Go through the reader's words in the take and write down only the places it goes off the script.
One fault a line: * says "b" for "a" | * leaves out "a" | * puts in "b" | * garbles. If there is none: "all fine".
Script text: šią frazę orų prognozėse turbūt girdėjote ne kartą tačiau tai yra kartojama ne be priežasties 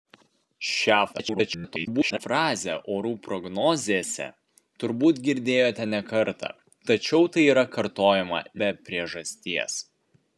* garbles
* leaves out "ne"